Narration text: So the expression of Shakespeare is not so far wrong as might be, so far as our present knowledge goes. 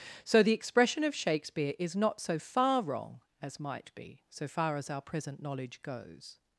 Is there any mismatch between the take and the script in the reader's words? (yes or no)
no